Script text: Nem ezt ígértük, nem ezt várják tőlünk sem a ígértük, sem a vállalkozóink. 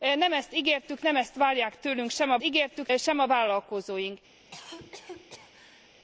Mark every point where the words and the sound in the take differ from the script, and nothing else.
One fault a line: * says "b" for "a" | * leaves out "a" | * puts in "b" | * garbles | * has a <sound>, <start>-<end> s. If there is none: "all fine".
* has a cough, 4.4-5.9 s